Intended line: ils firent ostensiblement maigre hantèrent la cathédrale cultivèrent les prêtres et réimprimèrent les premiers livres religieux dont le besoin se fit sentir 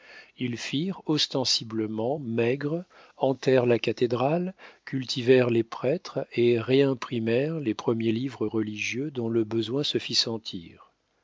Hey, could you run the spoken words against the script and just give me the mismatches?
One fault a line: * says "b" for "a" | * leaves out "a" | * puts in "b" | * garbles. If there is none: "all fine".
all fine